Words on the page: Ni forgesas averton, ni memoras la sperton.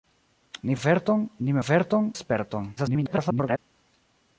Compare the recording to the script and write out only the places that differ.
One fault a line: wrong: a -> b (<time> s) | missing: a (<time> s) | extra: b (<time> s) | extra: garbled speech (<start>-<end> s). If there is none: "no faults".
missing: forgesas (0.8 s)
wrong: memoras -> averton (1.6 s)
extra: garbled speech (2.8-3.6 s)